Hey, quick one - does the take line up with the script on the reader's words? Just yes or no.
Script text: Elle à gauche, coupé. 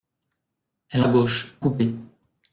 yes